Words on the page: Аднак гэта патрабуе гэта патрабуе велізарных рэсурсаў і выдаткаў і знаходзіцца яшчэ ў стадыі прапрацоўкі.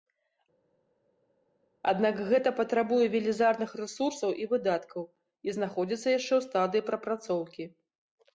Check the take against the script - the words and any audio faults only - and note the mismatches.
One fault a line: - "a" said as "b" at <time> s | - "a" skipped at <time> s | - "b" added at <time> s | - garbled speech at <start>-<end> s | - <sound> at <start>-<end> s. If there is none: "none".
- "гэта патрабуе" skipped at 3.1 s